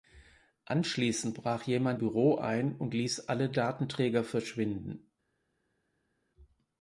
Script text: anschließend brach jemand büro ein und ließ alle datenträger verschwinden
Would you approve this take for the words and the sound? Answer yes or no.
yes